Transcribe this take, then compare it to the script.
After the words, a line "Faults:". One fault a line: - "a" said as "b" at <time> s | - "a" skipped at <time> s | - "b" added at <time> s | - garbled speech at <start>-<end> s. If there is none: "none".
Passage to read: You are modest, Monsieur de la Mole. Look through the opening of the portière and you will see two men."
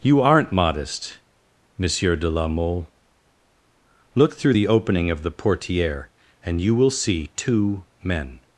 You aren't modest, Monsieur de la Mole. Look through the opening of the portière and you will see two men."
Faults:
- "are" said as "aren't" at 0.2 s